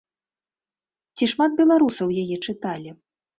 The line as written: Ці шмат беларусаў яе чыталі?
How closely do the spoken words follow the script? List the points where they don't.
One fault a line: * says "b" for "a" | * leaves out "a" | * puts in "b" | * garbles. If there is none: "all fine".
all fine